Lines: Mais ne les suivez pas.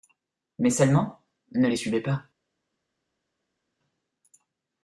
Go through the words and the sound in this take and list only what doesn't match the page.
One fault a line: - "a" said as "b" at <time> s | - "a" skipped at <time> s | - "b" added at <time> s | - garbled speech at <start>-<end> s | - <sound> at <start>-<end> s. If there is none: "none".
- "seulement" added at 0.7 s